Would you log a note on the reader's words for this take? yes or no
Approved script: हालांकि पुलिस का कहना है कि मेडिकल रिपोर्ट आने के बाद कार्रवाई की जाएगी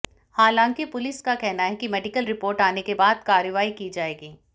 no